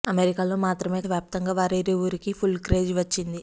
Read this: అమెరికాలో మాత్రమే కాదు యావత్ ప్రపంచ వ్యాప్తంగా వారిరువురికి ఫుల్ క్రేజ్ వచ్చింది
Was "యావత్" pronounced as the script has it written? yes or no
no